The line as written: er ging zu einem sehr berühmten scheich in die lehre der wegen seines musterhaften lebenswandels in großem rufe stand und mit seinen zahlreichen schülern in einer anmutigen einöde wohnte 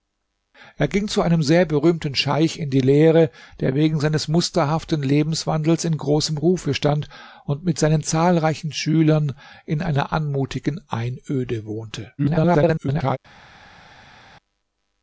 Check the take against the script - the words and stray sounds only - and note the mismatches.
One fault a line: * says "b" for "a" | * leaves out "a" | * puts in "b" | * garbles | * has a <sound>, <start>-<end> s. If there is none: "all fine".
* garbles